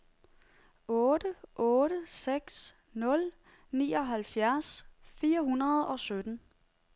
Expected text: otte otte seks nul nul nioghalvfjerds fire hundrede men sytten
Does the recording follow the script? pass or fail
fail